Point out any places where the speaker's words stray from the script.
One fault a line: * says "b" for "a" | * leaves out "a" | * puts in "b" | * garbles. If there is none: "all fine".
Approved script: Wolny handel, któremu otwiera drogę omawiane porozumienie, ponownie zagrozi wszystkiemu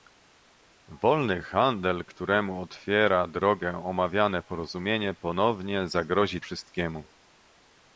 all fine